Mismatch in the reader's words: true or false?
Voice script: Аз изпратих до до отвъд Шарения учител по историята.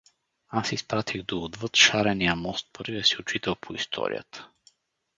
true